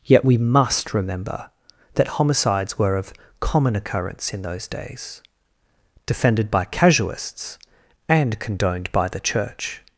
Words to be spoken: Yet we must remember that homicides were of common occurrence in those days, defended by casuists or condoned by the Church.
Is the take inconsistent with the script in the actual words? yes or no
yes